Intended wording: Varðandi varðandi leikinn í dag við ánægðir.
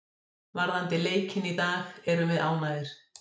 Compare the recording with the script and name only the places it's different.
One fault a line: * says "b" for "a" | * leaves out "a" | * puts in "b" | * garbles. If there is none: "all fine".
* leaves out "varðandi"
* puts in "erum"